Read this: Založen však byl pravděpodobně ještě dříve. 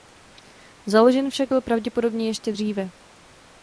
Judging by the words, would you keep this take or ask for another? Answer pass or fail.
pass